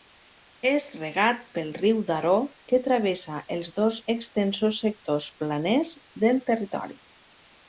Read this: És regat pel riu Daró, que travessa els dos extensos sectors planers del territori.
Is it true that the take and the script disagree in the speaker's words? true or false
false